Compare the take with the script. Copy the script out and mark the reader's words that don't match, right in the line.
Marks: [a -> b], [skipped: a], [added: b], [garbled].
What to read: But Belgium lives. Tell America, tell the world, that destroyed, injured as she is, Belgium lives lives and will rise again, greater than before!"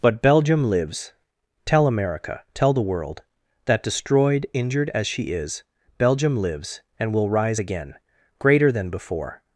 But Belgium lives. Tell America, tell the world, that destroyed, injured as she is, Belgium lives [skipped: lives] and will rise again, greater than before!"